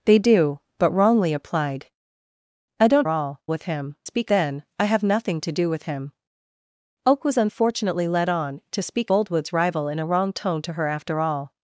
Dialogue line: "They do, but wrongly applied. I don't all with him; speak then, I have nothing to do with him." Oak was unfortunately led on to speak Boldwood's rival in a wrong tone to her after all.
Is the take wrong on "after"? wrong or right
right